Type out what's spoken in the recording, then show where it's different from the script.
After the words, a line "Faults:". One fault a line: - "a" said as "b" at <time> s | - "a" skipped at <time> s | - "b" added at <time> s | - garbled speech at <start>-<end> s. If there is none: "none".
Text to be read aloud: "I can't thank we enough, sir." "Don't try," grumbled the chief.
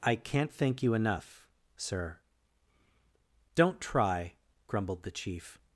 "I can't thank you enough, sir." "Don't try," grumbled the chief.
Faults:
- "we" said as "you" at 0.8 s